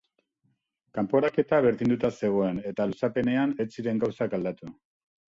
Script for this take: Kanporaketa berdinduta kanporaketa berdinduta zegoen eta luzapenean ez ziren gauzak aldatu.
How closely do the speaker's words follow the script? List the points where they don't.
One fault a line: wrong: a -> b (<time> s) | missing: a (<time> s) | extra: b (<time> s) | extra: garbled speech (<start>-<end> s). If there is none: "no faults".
missing: kanporaketa berdinduta (2.1 s)